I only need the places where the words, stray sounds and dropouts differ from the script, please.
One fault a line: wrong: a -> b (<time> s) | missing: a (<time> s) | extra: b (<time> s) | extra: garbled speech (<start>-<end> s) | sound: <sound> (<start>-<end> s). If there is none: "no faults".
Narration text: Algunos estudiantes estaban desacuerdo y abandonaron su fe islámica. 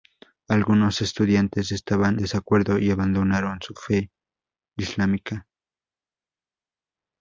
no faults